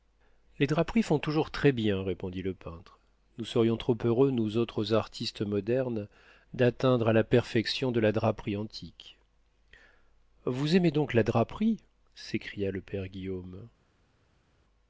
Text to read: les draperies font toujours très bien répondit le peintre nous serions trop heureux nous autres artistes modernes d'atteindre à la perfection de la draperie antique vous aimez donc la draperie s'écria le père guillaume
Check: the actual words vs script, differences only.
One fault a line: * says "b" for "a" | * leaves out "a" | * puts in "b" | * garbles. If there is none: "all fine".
all fine